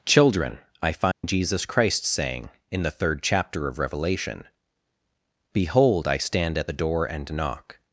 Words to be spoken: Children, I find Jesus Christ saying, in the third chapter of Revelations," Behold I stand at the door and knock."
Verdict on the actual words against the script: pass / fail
fail